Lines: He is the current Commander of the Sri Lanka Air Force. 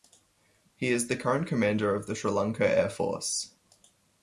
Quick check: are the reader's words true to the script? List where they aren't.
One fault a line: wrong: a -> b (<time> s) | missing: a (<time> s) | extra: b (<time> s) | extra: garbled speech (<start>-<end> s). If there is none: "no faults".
no faults